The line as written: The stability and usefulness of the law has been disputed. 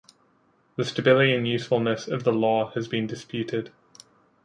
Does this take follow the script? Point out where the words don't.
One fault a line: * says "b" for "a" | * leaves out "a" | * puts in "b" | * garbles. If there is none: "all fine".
all fine